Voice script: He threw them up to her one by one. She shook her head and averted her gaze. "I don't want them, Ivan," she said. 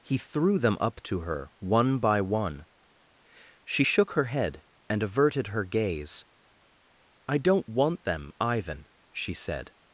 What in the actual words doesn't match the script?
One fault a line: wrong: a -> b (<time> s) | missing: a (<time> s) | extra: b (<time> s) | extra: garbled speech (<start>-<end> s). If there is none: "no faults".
no faults